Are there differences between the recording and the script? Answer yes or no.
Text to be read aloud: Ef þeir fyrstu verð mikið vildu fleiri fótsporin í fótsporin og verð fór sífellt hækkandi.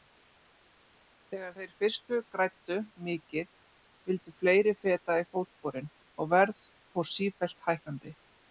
yes